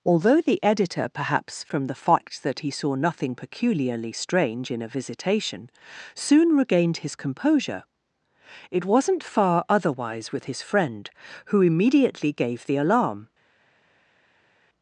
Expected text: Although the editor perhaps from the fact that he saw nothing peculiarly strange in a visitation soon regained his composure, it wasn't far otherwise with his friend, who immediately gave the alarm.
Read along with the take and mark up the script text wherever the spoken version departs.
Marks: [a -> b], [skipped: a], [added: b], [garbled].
Although the editor perhaps from the fact that he saw nothing peculiarly strange in a visitation soon regained his composure, it wasn't far otherwise with his friend, who immediately gave the alarm.